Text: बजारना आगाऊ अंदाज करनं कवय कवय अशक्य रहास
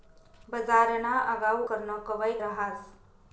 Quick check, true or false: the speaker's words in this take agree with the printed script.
false